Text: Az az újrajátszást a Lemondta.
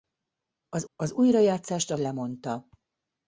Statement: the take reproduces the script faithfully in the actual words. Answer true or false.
true